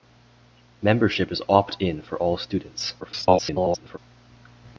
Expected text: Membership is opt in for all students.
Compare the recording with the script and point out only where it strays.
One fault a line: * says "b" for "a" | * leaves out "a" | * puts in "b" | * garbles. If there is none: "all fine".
* garbles